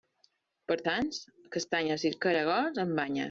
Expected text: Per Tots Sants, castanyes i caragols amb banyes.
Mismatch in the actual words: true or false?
true